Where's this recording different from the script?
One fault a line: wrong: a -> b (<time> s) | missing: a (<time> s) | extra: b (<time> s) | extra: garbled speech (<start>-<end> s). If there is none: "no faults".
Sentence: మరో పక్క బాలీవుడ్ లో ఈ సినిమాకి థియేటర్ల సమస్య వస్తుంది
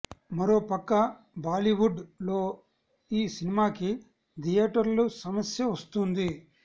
no faults